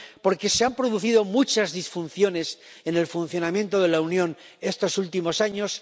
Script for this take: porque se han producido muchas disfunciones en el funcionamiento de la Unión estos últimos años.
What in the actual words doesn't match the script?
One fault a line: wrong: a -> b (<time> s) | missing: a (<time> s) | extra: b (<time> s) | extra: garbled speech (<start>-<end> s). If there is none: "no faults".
no faults